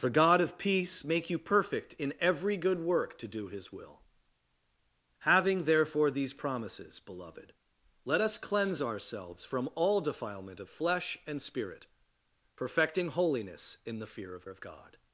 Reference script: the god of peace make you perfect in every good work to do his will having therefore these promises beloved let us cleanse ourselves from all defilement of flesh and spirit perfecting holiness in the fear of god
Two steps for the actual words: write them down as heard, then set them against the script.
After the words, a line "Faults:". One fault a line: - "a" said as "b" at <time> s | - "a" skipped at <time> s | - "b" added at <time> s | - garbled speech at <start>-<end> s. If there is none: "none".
the god of peace make you perfect in every good work to do his will having therefore these promises beloved let us cleanse ourselves from all defilement of flesh and spirit perfecting holiness in the fear of of god
Faults:
- "of" added at 14.5 s